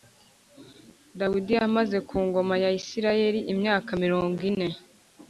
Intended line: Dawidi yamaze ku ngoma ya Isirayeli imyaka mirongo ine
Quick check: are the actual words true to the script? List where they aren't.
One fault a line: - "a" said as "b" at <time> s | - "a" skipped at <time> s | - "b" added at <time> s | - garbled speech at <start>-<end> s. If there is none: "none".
none